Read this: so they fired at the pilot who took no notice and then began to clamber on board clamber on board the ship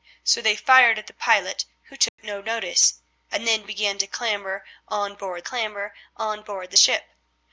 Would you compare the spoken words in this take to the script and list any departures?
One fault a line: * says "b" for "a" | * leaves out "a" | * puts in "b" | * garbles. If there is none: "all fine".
all fine